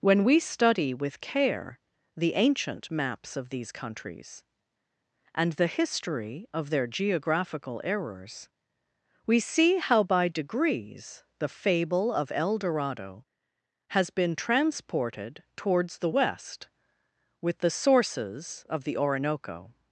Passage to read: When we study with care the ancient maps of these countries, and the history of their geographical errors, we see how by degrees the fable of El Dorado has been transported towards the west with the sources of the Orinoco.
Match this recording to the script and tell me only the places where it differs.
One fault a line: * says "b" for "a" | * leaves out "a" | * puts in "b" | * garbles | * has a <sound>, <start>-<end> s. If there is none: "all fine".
all fine